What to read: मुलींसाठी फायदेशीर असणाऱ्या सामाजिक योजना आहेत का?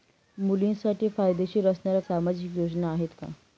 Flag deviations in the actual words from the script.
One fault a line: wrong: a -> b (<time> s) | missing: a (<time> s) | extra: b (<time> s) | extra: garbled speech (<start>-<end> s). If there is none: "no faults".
no faults